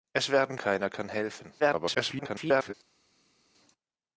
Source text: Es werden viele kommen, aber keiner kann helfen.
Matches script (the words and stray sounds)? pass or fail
fail